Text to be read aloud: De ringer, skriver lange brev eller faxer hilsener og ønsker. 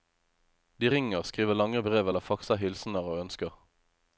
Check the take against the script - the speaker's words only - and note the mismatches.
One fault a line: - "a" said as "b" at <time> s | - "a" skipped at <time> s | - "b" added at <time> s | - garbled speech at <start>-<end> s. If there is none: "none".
none